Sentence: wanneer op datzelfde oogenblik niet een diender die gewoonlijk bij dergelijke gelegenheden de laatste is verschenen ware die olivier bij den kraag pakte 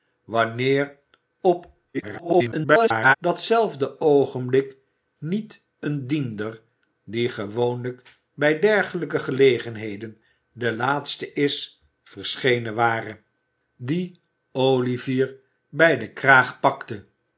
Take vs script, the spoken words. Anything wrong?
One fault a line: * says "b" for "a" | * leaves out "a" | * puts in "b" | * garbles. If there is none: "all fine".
* garbles